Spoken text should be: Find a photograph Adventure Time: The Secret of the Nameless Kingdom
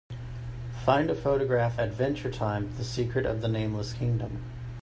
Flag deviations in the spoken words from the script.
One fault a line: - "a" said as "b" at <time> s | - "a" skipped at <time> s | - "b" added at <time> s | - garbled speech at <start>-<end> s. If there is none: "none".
none